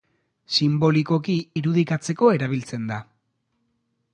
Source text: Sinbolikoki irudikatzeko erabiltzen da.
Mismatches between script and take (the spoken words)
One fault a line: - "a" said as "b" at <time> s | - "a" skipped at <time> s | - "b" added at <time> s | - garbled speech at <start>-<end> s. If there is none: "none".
none